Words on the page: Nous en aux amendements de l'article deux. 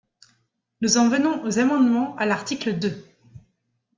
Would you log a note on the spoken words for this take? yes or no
yes